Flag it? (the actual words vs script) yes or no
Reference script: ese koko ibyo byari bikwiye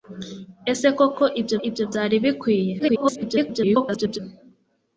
yes